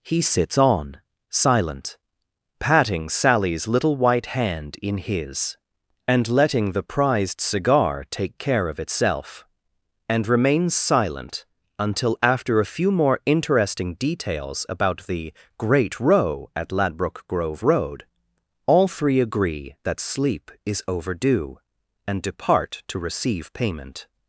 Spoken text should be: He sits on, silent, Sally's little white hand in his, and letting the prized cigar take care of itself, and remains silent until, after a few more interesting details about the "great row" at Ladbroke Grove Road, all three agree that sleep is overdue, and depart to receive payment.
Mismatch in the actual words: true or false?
true